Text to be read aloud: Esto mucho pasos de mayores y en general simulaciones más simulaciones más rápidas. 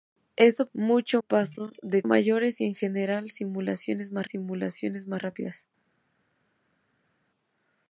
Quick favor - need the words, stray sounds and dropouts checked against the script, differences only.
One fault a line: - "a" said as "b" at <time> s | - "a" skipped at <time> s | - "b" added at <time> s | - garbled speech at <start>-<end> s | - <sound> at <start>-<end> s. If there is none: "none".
none